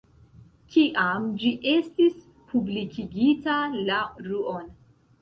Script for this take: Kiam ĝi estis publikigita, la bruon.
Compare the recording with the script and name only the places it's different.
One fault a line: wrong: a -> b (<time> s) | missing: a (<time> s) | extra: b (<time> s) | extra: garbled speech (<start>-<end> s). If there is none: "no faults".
no faults